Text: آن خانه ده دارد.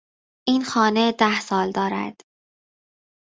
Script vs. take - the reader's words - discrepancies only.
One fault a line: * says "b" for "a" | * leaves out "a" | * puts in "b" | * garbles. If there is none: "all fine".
* says "این" for "آن"
* puts in "سال"